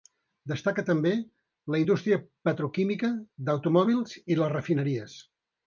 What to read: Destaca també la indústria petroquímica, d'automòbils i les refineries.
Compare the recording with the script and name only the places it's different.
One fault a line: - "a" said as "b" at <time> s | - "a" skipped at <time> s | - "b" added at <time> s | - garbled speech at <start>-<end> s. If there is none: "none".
none